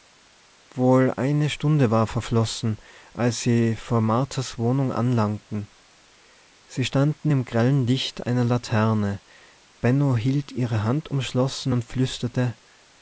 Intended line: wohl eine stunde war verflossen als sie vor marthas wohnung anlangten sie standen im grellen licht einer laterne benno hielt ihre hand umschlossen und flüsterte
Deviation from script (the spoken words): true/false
false